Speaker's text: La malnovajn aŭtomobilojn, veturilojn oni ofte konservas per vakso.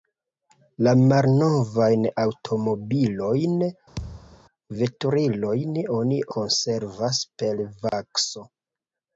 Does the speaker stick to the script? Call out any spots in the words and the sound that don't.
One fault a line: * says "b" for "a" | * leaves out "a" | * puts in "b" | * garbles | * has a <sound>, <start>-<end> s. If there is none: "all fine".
* has a thud, 4.0-4.4 s
* leaves out "ofte"
* has a dropout, 7.9-7.9 s